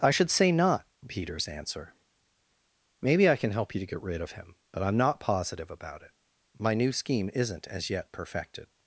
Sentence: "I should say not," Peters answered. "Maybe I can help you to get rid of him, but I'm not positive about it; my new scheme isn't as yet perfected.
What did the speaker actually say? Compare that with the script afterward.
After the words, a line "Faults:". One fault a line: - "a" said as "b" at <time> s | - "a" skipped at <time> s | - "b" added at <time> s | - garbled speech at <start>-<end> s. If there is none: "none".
"I should say not," Peters answer. "Maybe I can help you to get rid of him, but I'm not positive about it; my new scheme isn't as yet perfected.
Faults:
- "answered" said as "answer" at 1.5 s